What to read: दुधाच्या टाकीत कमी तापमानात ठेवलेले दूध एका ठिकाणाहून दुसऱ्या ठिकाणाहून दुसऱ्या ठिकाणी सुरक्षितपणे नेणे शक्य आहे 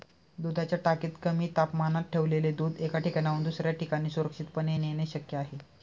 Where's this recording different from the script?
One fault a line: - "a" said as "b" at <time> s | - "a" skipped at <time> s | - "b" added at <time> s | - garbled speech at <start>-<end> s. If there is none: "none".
- "ठिकाणाहून दुसऱ्या" skipped at 3.7 s